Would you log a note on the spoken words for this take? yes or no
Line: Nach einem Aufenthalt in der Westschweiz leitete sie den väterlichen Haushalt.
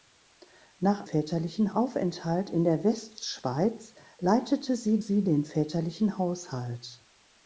yes